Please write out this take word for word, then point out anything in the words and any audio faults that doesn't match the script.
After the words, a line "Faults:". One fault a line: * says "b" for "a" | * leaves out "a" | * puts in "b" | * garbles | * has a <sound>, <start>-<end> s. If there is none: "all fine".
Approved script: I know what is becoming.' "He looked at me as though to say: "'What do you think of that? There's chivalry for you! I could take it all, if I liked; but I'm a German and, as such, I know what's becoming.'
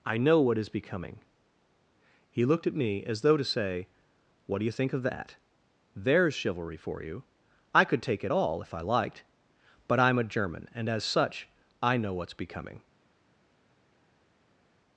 I know what is becoming.' "He looked at me as though to say: "'What do you think of that? There's chivalry for you! I could take it all, if I liked; but I'm a German and, as such, I know what's becoming.'
Faults:
all fine